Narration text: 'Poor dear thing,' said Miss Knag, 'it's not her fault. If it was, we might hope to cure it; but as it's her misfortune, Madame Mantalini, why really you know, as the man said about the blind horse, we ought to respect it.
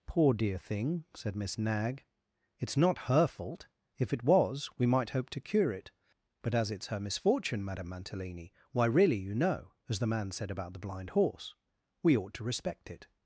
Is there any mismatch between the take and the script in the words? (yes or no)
no